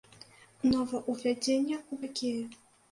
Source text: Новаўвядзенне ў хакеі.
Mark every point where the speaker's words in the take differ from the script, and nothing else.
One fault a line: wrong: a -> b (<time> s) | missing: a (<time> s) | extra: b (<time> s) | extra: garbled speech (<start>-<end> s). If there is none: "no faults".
no faults